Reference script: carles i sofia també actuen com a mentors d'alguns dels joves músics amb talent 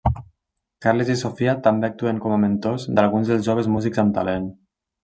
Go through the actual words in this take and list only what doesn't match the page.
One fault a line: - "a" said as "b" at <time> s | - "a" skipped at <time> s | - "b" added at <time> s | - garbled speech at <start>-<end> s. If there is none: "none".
none